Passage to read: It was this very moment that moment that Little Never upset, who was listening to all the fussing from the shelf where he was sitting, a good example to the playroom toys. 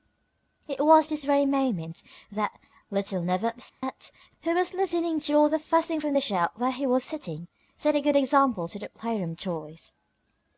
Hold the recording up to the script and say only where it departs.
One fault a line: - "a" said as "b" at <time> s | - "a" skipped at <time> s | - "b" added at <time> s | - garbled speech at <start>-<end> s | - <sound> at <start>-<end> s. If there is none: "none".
- "moment that" skipped at 2.6 s
- dropout at 3.7-3.8 s
- "set" added at 7.8 s